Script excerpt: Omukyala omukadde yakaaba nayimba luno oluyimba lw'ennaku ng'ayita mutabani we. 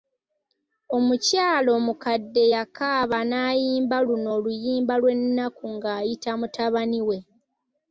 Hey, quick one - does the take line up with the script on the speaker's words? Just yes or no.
yes